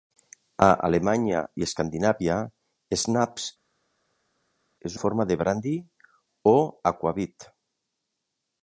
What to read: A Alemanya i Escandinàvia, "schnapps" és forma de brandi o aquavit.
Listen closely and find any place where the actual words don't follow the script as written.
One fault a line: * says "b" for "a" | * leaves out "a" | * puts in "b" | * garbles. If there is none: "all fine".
all fine